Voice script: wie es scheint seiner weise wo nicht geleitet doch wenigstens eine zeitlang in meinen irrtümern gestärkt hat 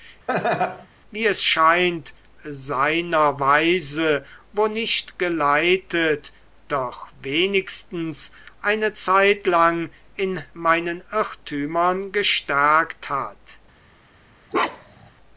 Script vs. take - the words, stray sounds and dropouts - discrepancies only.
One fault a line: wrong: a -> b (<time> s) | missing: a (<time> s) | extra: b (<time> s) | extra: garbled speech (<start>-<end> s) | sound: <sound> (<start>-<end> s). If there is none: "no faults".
sound: laugh (0.3-0.9 s)
sound: bark (14.5-15.1 s)